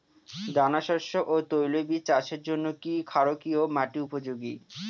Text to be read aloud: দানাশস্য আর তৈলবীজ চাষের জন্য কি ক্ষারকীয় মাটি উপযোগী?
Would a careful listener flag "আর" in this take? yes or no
yes